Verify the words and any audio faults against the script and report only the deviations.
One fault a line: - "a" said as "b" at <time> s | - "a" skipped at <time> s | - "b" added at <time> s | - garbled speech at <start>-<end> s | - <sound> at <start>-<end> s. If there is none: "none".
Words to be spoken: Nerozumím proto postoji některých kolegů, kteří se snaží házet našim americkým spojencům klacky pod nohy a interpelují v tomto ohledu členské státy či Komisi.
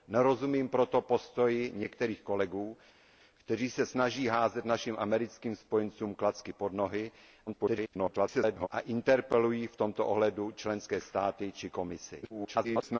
- garbled speech at 7.5-8.7 s
- garbled speech at 12.2-13.0 s